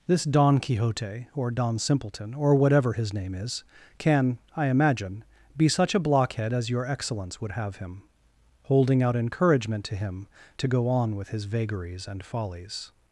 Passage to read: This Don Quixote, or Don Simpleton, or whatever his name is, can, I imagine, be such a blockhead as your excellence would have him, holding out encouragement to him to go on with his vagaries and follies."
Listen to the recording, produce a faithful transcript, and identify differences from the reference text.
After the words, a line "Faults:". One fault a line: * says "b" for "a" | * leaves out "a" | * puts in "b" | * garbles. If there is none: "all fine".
This Don Quixote, or Don Simpleton, or whatever his name is, can, I imagine, be such a blockhead as your excellence would have him, holding out encouragement to him to go on with his vagaries and follies."
Faults:
all fine